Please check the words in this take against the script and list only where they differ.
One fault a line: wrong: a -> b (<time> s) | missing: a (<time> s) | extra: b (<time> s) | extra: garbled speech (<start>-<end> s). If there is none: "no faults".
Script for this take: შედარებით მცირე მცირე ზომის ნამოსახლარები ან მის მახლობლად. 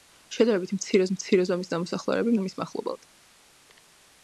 no faults